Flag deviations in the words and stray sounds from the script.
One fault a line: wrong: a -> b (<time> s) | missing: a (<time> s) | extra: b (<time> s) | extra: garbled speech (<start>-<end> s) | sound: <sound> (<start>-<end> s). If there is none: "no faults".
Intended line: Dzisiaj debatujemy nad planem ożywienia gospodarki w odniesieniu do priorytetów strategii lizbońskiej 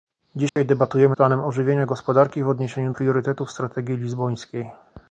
sound: dropout (0.5-0.6 s)
missing: nad (1.1 s)
missing: do (2.9 s)